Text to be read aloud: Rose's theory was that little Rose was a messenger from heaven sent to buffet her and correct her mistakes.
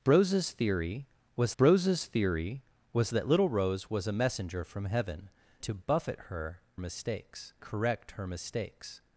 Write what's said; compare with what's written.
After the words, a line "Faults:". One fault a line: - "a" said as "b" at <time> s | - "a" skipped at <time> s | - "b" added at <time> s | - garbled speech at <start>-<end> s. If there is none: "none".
Rose's theory was rose's theory was that little Rose was a messenger from heaven to buffet her mistakes correct her mistakes.
Faults:
- "rose's theory was" added at 1.6 s
- "sent" skipped at 5.3 s
- "and" said as "mistakes" at 6.8 s